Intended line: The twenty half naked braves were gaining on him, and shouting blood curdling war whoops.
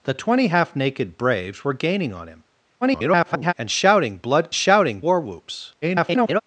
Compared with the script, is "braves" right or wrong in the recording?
right